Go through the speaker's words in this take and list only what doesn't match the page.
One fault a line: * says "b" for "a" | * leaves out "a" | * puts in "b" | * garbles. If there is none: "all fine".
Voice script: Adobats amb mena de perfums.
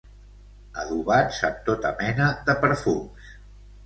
* puts in "tota"